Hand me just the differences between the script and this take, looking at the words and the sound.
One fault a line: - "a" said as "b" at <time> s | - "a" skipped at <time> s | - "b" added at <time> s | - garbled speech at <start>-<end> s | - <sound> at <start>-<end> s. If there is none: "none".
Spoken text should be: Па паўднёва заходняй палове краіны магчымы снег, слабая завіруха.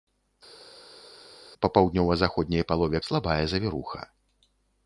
- "краіны магчымы снег" skipped at 3.0 s